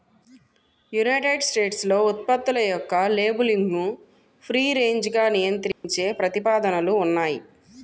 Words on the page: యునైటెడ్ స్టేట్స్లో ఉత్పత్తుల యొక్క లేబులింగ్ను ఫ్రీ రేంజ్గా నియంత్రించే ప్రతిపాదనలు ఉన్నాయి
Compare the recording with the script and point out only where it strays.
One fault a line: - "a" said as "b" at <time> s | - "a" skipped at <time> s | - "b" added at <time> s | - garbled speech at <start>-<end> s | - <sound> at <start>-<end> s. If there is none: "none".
- dropout at 5.7-5.8 s